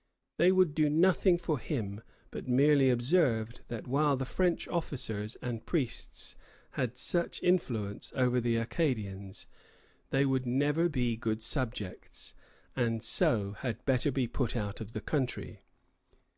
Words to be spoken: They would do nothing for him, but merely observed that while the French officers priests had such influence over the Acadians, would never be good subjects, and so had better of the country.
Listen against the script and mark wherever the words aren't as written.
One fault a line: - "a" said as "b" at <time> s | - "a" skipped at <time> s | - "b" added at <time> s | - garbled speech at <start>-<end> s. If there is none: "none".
- "and" added at 5.4 s
- "they" added at 10.1 s
- "be put out" added at 14.1 s